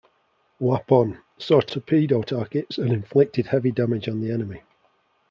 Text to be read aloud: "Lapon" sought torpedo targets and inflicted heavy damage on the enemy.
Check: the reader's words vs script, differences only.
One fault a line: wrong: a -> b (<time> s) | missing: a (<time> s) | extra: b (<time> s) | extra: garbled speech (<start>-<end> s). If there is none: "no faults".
no faults